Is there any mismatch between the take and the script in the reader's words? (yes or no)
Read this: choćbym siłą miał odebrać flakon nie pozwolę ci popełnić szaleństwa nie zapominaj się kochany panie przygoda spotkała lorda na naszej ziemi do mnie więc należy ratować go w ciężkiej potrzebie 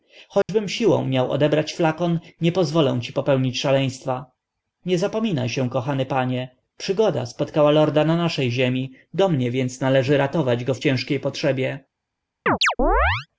no